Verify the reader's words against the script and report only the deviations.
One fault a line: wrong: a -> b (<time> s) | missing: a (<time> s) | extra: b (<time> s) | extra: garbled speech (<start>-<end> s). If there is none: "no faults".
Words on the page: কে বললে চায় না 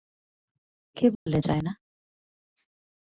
no faults